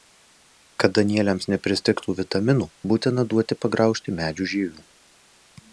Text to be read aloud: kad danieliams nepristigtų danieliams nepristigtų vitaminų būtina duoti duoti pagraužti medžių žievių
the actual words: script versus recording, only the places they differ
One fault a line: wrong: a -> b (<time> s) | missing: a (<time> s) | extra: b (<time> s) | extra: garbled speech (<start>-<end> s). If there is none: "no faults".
missing: danieliams nepristigtų (2.1 s)
missing: duoti (3.6 s)